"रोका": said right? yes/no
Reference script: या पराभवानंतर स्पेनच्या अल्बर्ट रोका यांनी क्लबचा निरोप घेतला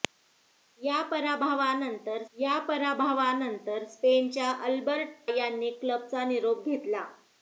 no